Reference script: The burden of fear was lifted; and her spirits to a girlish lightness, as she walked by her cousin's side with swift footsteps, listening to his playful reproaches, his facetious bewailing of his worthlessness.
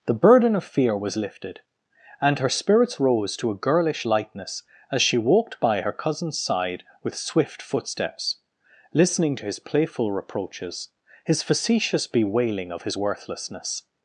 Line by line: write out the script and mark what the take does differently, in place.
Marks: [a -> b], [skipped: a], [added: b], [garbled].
The burden of fear was lifted; and her spirits [added: rose] to a girlish lightness, as she walked by her cousin's side with swift footsteps, listening to his playful reproaches, his facetious bewailing of his worthlessness.